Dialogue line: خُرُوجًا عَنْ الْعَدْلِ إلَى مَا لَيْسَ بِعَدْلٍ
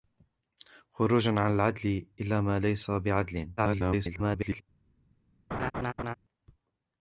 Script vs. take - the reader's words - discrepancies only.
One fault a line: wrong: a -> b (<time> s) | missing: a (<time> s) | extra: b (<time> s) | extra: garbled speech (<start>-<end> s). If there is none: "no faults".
extra: garbled speech (3.6-4.6 s)